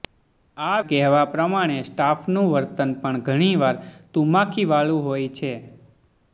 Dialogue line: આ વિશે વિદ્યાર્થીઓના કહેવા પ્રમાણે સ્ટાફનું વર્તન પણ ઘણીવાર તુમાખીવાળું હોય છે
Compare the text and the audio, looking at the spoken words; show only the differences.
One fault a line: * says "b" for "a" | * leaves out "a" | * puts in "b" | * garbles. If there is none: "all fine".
* leaves out "વિશે વિદ્યાર્થીઓના"